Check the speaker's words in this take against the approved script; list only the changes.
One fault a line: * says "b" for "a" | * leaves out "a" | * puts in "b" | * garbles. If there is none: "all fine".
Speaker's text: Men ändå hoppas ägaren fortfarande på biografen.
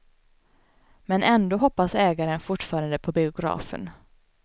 all fine